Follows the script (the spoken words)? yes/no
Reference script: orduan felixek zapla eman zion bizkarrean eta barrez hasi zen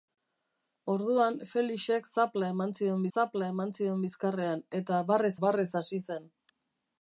no